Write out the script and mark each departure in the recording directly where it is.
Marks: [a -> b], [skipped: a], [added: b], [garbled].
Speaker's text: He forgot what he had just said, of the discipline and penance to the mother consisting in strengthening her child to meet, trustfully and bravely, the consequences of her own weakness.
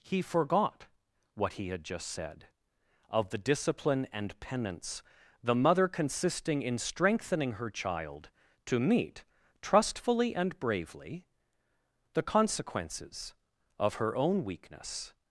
He forgot what he had just said, of the discipline and penance [skipped: to] the mother consisting in strengthening her child to meet, trustfully and bravely, the consequences of her own weakness.